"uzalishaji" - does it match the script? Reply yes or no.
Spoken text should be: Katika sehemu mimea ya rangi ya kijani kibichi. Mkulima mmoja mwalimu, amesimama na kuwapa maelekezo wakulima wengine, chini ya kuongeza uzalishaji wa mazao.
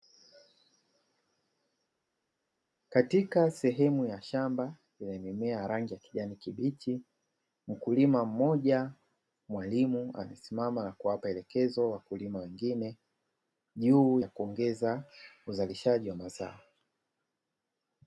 yes